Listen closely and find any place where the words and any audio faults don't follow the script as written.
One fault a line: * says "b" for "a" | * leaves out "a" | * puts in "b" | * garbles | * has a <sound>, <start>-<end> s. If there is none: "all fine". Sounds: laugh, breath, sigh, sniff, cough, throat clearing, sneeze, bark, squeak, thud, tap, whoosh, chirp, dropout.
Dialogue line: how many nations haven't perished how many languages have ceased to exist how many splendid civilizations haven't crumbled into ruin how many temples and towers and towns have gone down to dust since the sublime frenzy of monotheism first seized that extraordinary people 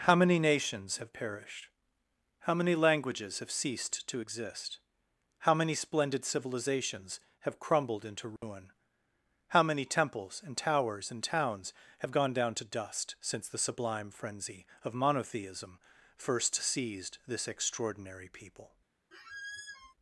* says "have" for "haven't"
* says "have" for "haven't"
* has a dropout, 8.4-8.4 s
* says "this" for "that"
* has a squeak, 19.1-19.9 s